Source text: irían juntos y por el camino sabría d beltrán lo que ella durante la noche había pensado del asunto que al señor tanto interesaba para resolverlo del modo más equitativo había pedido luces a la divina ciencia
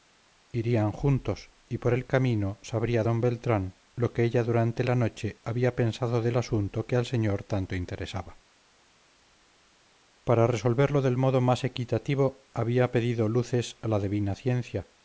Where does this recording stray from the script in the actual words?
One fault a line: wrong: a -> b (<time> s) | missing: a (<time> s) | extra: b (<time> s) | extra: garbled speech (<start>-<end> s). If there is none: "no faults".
no faults